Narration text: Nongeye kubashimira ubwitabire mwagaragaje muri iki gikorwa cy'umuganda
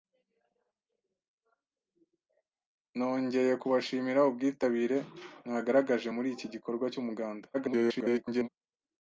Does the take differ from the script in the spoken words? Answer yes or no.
yes